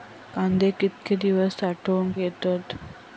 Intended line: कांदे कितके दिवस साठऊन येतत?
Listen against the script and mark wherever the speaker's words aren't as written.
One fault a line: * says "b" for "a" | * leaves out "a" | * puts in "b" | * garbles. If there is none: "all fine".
all fine